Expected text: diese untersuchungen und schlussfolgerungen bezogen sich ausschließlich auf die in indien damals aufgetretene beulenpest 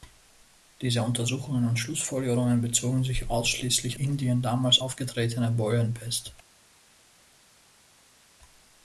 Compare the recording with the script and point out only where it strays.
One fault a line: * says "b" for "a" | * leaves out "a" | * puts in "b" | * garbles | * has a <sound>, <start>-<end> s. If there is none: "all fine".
* leaves out "auf die in"